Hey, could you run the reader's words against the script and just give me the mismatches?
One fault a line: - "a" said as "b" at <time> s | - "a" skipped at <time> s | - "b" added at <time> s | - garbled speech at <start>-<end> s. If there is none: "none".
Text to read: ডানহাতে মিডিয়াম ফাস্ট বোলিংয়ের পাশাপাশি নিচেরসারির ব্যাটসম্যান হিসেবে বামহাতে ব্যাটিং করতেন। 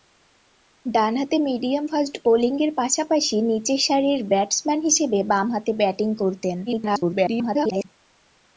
- garbled speech at 6.7-7.9 s